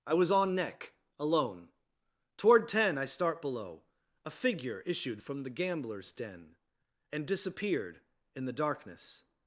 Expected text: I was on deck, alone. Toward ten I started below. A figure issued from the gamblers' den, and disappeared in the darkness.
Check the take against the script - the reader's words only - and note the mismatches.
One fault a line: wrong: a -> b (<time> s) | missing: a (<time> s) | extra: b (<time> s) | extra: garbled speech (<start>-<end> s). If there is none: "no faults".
wrong: deck -> neck (0.6 s)
wrong: started -> start (3.0 s)